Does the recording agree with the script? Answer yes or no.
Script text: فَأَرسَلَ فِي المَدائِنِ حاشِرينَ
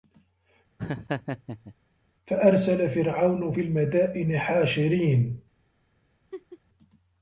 no